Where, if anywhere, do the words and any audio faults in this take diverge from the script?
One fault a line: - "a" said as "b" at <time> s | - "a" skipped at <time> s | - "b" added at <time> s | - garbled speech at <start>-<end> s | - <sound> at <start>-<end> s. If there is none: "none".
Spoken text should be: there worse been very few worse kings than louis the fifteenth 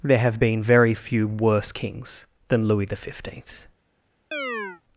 - "worse" said as "have" at 0.2 s
- chirp at 4.3-4.8 s